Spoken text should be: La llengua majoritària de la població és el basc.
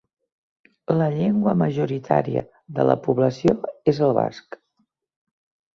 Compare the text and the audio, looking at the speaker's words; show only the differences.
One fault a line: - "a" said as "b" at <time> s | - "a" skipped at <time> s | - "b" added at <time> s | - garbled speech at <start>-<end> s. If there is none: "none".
none